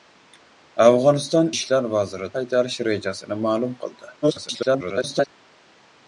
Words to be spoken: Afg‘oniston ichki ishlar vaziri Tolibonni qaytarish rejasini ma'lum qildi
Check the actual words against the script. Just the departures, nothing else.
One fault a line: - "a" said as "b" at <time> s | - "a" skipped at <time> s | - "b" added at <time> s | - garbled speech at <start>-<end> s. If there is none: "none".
- "ichki" skipped at 1.5 s
- "Tolibonni" skipped at 2.3 s
- garbled speech at 4.2-5.3 s